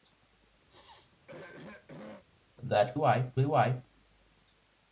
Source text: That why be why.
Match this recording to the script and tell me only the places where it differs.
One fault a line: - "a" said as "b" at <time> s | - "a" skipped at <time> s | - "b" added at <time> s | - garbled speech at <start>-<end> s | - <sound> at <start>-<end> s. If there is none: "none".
- throat clearing at 0.7-2.2 s